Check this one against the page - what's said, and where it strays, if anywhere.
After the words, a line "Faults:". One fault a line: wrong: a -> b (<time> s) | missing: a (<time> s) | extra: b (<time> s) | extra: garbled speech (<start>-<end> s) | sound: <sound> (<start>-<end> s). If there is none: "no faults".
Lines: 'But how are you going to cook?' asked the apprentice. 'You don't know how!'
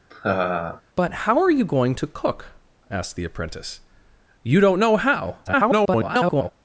'But how are you going to cook?' asked the apprentice. 'You don't know how!' [garbled]
Faults:
sound: laugh (0.1-0.8 s)
extra: garbled speech (5.4-6.5 s)